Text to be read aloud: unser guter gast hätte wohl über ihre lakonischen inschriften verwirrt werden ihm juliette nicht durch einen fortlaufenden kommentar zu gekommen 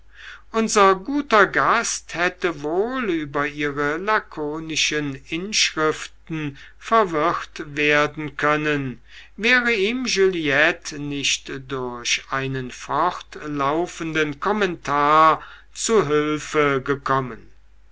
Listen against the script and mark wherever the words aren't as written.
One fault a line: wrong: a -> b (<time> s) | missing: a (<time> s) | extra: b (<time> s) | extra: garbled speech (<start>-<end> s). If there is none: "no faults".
extra: können wäre (8.3 s)
extra: hülfe (16.1 s)